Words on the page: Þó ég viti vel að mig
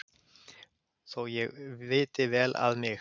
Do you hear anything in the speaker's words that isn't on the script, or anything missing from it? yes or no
no